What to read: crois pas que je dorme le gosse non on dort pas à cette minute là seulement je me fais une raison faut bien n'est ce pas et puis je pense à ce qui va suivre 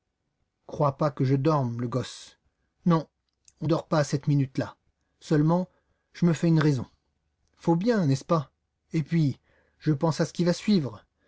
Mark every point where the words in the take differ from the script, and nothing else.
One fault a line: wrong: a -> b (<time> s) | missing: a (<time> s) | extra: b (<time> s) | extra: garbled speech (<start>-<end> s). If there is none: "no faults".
no faults